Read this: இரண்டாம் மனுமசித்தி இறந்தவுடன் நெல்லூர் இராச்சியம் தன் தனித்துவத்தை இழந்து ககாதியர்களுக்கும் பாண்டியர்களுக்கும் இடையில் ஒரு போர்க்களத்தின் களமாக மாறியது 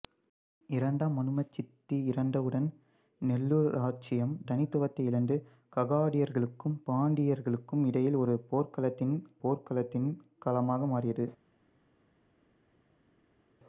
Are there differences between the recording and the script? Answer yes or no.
yes